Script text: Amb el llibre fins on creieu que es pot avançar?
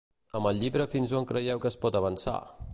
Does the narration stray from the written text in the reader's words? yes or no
no